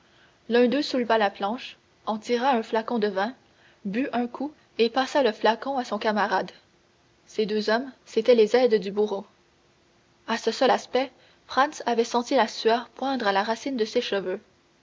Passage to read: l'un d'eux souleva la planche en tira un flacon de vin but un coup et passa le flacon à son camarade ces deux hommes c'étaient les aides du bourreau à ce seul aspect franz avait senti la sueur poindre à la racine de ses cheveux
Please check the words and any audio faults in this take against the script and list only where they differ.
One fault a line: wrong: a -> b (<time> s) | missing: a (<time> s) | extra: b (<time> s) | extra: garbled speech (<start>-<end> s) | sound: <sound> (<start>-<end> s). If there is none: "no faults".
no faults